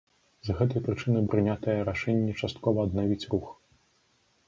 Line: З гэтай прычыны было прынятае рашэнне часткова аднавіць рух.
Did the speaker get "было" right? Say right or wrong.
wrong